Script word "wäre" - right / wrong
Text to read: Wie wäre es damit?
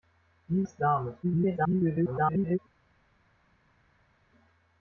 wrong